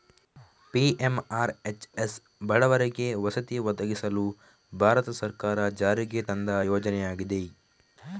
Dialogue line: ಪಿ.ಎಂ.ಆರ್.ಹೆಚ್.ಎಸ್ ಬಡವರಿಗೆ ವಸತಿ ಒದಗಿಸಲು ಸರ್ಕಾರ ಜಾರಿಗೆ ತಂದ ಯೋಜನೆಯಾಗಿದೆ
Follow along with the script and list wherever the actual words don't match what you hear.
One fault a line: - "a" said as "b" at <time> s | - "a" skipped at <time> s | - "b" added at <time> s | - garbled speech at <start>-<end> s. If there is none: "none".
- "ಭಾರತ" added at 4.7 s